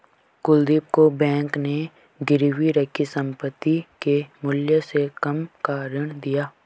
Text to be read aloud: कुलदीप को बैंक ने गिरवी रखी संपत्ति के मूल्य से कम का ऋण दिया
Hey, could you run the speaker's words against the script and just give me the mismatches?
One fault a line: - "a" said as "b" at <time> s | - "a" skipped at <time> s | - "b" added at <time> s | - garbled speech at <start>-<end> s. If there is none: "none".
none